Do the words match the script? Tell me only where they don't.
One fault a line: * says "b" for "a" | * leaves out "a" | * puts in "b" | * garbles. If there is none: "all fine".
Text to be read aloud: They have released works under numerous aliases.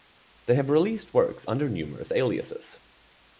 all fine